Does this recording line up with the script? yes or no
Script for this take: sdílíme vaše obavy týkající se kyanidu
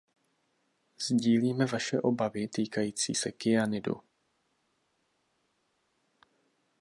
yes